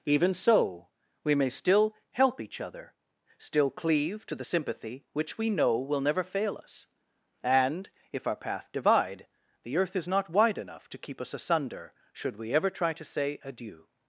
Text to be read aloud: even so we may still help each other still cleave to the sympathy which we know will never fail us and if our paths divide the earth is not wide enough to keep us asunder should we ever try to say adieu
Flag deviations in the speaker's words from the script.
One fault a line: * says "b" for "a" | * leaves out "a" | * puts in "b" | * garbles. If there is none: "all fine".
* says "path" for "paths"